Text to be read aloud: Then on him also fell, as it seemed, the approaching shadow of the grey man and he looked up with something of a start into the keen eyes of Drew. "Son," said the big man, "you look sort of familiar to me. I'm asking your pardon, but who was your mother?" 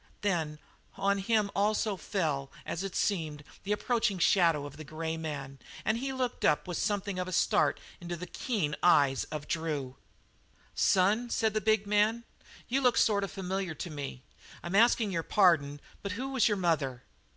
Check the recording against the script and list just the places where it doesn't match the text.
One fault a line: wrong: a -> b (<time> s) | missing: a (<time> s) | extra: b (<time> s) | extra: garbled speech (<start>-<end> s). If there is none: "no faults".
no faults